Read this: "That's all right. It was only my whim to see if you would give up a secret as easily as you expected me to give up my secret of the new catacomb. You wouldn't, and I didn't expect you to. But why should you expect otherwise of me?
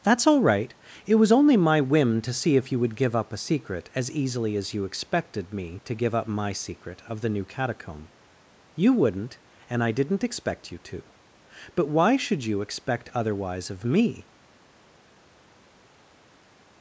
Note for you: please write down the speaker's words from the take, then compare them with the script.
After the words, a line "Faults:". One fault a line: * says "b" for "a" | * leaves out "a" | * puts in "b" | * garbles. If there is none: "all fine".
"That's all right. It was only my whim to see if you would give up a secret as easily as you expected me to give up my secret of the new catacomb. You wouldn't, and I didn't expect you to. But why should you expect otherwise of me?
Faults:
all fine